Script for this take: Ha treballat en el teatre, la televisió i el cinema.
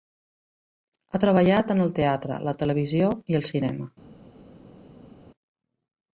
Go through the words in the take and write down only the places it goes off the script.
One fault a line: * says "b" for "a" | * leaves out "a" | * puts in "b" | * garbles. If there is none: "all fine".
all fine